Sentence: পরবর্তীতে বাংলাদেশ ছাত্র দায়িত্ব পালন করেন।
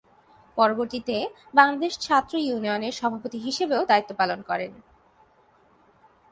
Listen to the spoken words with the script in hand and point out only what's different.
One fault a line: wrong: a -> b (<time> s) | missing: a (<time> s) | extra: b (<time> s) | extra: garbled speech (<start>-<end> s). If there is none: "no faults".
extra: ইউনিয়নের সভাপতি হিসেবেও (2.4 s)